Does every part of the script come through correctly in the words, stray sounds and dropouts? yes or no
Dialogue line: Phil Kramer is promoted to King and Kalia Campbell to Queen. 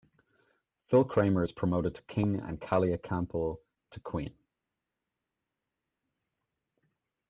yes